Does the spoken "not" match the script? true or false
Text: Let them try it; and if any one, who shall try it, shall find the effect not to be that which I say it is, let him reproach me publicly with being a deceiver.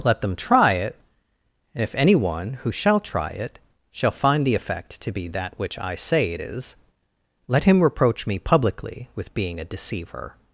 false